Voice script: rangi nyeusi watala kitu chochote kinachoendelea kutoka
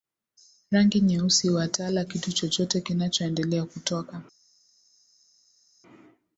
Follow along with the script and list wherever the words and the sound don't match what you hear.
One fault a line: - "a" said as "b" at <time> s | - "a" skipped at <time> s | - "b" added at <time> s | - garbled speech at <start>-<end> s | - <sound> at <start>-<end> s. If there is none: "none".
none